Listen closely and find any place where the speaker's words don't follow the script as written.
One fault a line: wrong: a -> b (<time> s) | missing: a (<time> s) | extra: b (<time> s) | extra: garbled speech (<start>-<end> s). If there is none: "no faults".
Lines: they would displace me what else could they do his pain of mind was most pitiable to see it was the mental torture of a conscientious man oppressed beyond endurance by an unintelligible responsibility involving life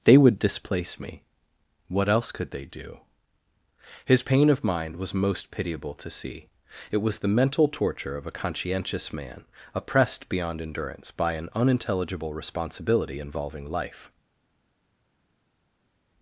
no faults